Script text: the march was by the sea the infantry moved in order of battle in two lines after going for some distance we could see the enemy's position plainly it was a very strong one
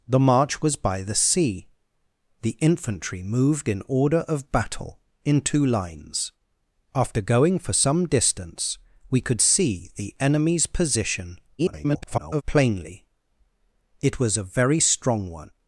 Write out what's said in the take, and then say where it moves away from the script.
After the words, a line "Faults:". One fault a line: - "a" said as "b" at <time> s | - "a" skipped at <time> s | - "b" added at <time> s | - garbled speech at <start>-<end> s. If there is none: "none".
the march was by the sea the infantry moved in order of battle in two lines after going for some distance we could see the enemy's position [garbled] plainly it was a very strong one
Faults:
- garbled speech at 11.6-12.4 s